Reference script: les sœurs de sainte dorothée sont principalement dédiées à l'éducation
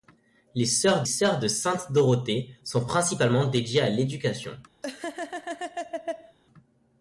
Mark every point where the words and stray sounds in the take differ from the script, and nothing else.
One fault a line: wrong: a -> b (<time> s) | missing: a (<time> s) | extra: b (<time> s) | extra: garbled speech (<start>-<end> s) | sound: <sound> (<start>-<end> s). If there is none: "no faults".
extra: sœurs (1.0 s)
sound: laugh (4.8-6.4 s)